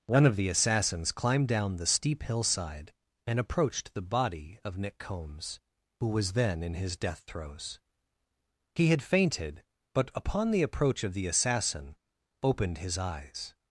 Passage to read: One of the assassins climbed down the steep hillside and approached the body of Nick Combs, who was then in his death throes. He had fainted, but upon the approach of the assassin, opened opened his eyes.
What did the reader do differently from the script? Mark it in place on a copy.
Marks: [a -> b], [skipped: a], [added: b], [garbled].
One of the assassins climbed down the steep hillside and approached the body of Nick Combs, who was then in his death throes. He had fainted, but upon the approach of the assassin, opened [skipped: opened] his eyes.